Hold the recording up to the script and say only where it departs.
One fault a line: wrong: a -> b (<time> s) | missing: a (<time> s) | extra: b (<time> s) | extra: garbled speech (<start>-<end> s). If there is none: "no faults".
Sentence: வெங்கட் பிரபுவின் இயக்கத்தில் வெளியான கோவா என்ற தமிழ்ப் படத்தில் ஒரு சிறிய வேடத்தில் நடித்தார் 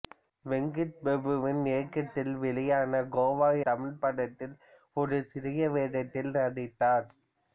missing: என்ற (3.5 s)